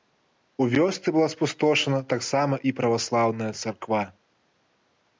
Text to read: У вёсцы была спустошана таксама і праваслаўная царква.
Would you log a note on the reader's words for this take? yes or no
no